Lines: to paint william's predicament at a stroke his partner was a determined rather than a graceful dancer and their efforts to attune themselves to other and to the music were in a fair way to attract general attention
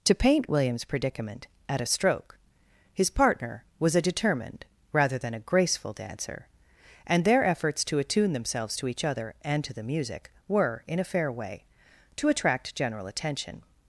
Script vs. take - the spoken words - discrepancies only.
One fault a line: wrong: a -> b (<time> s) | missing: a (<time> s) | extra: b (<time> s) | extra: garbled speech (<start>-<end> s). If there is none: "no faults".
extra: each (8.9 s)